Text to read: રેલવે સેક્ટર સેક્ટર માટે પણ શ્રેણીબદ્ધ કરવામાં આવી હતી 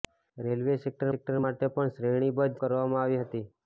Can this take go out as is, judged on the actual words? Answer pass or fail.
pass